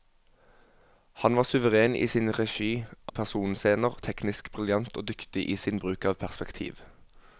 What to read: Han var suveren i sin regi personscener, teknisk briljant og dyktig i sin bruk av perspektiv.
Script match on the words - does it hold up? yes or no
yes